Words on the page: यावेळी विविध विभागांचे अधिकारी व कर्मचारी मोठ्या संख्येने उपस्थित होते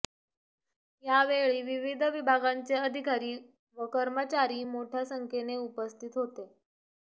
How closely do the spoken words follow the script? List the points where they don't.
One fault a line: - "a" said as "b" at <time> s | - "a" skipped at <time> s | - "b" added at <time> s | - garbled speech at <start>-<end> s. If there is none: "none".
none